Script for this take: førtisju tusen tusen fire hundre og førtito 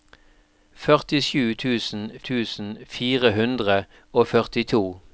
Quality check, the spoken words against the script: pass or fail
pass